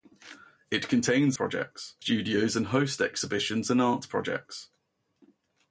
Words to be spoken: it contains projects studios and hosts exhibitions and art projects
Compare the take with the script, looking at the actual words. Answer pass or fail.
pass